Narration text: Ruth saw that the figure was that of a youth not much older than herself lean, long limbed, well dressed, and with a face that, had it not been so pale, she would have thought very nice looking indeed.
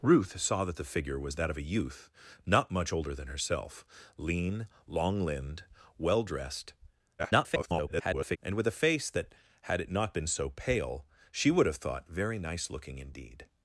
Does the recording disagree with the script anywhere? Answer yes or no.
yes